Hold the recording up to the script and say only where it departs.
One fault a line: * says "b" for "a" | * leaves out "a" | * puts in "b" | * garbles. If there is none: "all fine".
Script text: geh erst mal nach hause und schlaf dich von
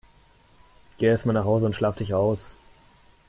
* says "aus" for "von"